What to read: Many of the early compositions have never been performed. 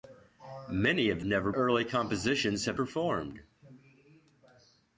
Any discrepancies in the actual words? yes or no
yes